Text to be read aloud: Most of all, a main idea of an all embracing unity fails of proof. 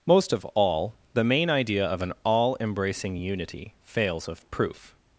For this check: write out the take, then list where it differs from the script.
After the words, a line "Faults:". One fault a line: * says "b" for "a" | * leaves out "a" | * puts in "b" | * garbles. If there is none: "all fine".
Most of all, the main idea of an all embracing unity fails of proof.
Faults:
* says "the" for "a"